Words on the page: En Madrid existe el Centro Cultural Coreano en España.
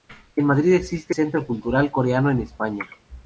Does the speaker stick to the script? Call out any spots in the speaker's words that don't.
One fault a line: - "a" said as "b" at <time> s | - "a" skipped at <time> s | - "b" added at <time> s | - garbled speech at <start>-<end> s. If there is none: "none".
- "el" skipped at 1.1 s